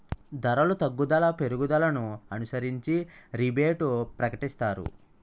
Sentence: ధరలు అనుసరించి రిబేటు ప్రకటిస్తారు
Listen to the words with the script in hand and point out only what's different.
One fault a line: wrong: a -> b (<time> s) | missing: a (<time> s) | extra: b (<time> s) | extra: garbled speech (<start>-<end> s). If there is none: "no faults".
extra: తగ్గుదల పెరుగుదలను (0.8 s)